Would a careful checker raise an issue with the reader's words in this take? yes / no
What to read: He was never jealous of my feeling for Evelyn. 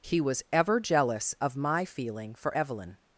yes